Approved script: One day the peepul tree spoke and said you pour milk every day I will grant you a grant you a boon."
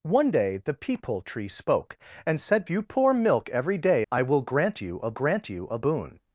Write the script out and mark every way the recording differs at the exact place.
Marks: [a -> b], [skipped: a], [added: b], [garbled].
One day the peepul tree spoke and said you pour milk every day I will grant you a grant you a boon."